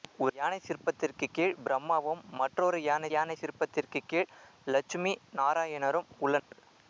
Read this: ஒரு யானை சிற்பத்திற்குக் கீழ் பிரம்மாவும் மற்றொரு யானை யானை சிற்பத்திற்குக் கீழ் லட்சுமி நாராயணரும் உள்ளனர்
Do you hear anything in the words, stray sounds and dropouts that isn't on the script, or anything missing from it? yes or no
yes